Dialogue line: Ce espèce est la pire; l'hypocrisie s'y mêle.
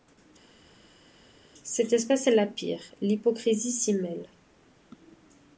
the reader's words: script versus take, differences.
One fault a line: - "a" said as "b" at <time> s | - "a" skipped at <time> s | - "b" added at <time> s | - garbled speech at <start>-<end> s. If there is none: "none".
- "Ce" said as "Cette" at 1.6 s